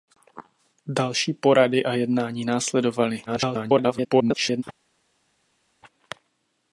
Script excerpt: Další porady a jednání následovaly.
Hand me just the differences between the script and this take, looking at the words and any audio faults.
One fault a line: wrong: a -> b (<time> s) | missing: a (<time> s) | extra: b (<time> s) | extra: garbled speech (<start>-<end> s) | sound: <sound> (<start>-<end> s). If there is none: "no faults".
extra: garbled speech (3.3-4.6 s)